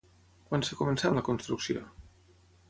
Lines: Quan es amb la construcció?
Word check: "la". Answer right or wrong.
right